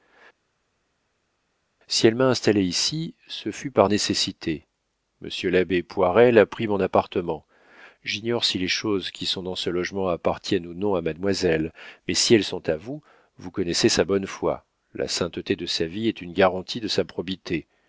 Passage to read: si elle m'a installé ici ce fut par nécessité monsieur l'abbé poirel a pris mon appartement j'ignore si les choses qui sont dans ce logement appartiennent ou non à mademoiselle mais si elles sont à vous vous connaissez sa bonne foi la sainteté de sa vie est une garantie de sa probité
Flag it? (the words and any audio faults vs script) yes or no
no